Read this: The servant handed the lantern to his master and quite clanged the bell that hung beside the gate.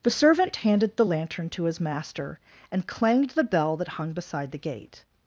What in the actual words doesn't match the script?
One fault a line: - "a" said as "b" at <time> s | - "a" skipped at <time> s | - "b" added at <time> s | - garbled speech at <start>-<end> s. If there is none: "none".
- "quite" skipped at 2.9 s